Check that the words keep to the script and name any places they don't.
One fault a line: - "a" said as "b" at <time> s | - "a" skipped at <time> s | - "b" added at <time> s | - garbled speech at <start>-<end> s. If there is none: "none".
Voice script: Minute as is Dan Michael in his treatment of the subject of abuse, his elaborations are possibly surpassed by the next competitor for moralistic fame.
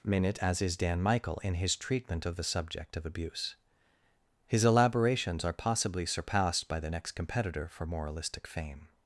none